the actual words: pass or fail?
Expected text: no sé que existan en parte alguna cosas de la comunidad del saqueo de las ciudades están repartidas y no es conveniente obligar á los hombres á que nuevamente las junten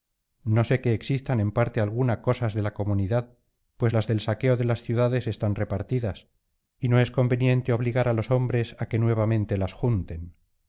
fail